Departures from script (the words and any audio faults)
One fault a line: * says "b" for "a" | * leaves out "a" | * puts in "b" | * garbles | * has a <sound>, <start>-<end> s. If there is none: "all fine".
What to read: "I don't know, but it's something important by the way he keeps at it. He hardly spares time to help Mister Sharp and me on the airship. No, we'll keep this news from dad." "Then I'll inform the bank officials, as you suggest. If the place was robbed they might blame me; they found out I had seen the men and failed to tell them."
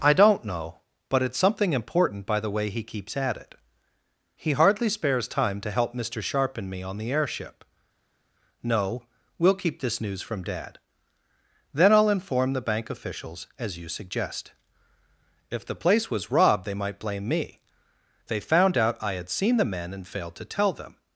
all fine